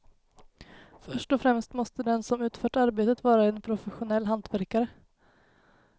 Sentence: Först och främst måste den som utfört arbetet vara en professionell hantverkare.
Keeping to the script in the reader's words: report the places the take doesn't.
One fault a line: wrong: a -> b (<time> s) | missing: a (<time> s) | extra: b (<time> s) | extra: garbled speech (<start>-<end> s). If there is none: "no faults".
no faults